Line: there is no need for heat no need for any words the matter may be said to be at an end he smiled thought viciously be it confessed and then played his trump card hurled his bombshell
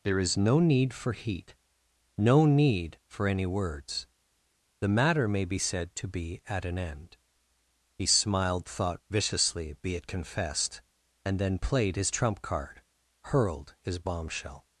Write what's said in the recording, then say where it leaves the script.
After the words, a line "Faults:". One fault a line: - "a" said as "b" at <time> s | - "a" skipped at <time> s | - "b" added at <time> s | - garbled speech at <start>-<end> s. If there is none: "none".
there is no need for heat no need for any words the matter may be said to be at an end he smiled thought viciously be it confessed and then played his trump card hurled his bombshell
Faults:
none